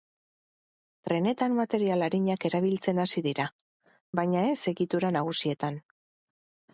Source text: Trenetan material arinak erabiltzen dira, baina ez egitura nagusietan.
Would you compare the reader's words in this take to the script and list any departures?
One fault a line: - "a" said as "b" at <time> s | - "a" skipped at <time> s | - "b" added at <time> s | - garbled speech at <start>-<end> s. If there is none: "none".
- "hasi" added at 3.0 s